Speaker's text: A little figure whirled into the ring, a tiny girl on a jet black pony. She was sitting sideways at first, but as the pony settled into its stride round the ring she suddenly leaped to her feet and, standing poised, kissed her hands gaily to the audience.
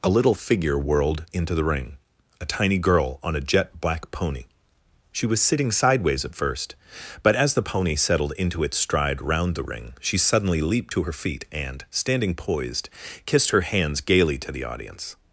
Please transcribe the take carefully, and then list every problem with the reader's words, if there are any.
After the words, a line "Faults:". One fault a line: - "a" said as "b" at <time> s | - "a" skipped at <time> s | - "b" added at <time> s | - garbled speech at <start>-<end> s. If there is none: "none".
A little figure whirled into the ring, a tiny girl on a jet black pony. She was sitting sideways at first, but as the pony settled into its stride round the ring she suddenly leaped to her feet and, standing poised, kissed her hands gaily to the audience.
Faults:
none